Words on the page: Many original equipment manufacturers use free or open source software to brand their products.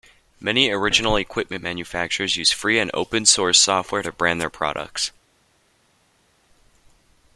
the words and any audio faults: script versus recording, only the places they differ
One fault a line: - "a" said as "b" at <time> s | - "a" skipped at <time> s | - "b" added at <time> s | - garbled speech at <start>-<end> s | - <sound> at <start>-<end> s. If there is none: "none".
- "or" said as "and" at 2.8 s